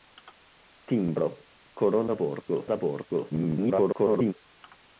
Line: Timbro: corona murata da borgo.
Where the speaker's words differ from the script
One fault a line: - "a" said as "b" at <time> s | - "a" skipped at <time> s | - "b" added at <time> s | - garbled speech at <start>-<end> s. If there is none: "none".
- "murata" said as "borgo" at 2.1 s
- garbled speech at 3.3-4.3 s